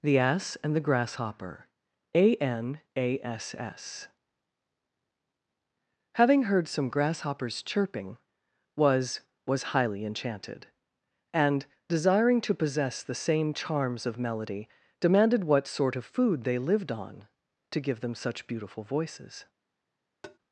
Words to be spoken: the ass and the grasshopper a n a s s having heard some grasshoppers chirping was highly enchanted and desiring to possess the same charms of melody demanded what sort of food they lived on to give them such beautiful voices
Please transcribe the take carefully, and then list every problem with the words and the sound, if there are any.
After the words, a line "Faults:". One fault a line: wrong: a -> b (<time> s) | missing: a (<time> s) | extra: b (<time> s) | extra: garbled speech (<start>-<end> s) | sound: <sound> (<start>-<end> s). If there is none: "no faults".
the ass and the grasshopper a n a s s having heard some grasshoppers chirping was was highly enchanted and desiring to possess the same charms of melody demanded what sort of food they lived on to give them such beautiful voices
Faults:
extra: was (9.4 s)
sound: tap (20.2-20.4 s)